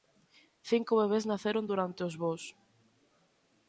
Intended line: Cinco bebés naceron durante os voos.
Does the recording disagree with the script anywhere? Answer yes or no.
no